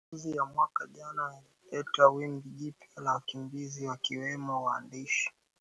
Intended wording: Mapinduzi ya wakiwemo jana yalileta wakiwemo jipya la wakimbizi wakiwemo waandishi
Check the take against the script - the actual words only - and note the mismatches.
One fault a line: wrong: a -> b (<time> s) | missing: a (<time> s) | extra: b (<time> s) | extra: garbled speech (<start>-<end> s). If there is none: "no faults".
wrong: wakiwemo -> mwaka (0.6 s)
wrong: wakiwemo -> wimbi (2.1 s)